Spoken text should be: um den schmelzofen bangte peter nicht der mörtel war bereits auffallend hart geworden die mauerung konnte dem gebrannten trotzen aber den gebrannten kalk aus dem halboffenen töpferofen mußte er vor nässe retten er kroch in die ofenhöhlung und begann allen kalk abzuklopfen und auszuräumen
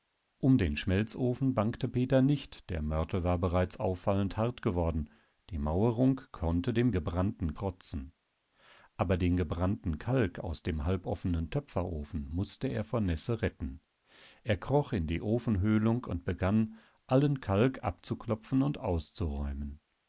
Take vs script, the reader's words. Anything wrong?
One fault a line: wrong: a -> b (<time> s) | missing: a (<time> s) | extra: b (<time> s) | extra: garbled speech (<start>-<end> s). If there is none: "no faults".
no faults